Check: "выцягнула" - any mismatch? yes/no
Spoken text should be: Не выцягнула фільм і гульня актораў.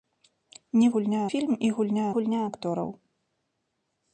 yes